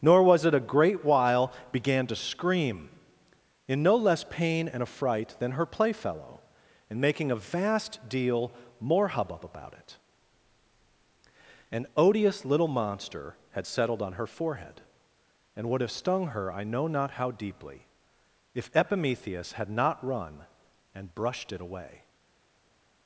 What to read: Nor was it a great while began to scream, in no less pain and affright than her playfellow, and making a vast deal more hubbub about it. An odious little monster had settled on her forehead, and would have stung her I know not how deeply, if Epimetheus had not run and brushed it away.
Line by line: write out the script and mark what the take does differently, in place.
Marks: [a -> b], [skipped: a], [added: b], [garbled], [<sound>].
Nor was it a great while began to scream, in no less pain and affright than her playfellow, and making a vast deal more hubbub about it. An odious little monster had settled on her forehead, and would have stung her I know not how deeply, if Epimetheus had not run and brushed it away.